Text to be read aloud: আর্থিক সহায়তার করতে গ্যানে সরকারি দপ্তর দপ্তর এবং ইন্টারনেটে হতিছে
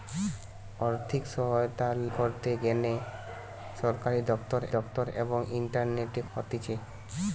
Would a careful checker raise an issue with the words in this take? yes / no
no